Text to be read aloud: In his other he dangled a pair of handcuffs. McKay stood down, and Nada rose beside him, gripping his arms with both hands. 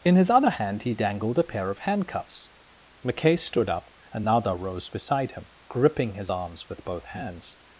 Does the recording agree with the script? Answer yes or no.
no